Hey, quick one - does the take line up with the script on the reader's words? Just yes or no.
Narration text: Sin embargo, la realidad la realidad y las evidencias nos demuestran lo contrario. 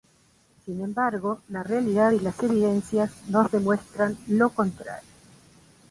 no